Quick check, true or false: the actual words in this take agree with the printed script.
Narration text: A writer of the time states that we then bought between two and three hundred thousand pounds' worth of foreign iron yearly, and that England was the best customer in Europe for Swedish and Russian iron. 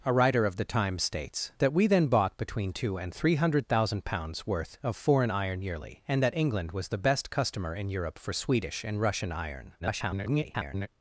false